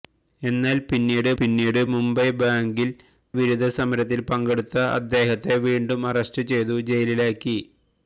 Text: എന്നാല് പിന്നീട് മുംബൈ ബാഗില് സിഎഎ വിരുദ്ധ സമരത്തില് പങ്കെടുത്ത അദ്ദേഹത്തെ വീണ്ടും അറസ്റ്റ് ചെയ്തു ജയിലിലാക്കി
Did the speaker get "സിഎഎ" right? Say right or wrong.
wrong